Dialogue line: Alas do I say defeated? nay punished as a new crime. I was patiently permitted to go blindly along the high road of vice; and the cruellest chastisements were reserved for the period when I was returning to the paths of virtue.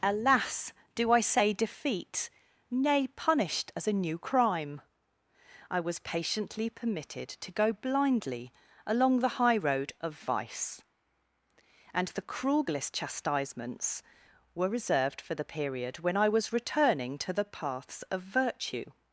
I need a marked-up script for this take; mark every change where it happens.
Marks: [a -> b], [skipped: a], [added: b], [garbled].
Alas do I say [defeated? -> defeat] nay punished as a new crime. I was patiently permitted to go blindly along the high road of vice; and the cruellest chastisements were reserved for the period when I was returning to the paths of virtue.